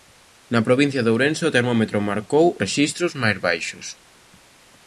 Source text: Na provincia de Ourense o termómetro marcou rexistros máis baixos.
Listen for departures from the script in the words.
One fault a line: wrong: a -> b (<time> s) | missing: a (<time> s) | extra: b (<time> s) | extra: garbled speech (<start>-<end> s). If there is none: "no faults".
no faults